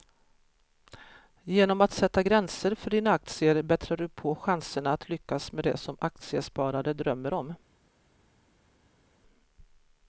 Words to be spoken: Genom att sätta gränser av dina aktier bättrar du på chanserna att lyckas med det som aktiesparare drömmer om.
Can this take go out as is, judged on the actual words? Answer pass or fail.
fail